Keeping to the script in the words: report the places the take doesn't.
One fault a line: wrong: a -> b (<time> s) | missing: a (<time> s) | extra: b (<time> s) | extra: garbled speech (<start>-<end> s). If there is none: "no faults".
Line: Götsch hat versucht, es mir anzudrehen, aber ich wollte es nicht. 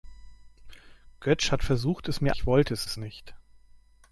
missing: anzudrehen aber (2.3 s)
extra: es (2.8 s)